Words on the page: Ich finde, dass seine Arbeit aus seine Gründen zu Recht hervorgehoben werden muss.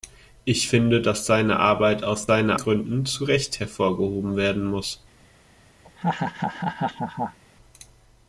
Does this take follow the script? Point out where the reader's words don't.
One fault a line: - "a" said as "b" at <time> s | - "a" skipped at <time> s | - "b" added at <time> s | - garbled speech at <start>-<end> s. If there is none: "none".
none